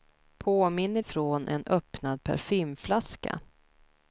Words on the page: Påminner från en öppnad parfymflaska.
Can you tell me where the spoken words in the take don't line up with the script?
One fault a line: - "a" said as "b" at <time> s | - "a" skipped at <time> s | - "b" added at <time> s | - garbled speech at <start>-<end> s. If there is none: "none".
none